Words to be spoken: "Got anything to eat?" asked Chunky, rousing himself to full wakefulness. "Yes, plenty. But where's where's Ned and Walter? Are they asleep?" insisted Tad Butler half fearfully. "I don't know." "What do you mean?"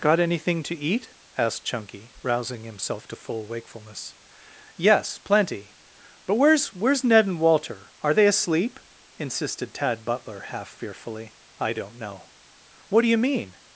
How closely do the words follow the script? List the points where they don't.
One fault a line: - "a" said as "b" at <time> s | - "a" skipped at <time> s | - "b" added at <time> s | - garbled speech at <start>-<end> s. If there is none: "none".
none